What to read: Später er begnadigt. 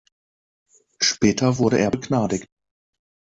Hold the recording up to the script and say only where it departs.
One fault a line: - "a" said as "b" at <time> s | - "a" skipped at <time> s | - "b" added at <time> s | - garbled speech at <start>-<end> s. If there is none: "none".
- "wurde" added at 1.6 s